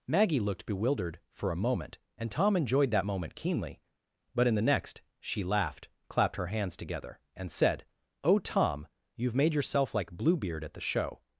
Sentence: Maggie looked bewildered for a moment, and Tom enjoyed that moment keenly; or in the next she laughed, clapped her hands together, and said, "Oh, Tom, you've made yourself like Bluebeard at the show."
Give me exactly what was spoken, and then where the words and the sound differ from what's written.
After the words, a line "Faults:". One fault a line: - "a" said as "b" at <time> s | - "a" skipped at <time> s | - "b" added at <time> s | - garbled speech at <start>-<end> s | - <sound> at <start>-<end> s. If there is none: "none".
Maggie looked bewildered for a moment, and Tom enjoyed that moment keenly; but in the next she laughed, clapped her hands together, and said, "Oh, Tom, you've made yourself like Bluebeard at the show."
Faults:
- "or" said as "but" at 4.3 s